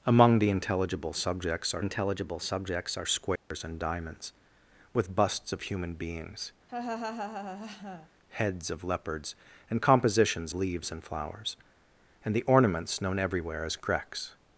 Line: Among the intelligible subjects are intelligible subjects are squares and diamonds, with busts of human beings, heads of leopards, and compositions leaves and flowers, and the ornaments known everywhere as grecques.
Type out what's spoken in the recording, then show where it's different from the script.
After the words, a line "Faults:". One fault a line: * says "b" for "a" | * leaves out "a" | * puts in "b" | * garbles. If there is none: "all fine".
Among the intelligible subjects are intelligible subjects are squares and diamonds, with busts of human beings, heads of leopards, and compositions leaves and flowers, and the ornaments known everywhere as grecques.
Faults:
all fine